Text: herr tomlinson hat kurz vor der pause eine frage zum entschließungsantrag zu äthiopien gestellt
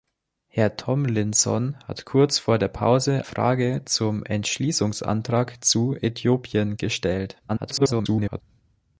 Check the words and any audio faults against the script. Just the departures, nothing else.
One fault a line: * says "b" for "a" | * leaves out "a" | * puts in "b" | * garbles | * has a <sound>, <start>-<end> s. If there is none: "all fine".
* leaves out "eine"
* garbles